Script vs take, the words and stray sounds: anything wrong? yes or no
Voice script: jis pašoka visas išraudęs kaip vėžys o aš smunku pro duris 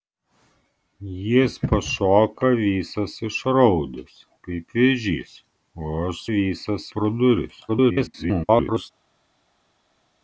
yes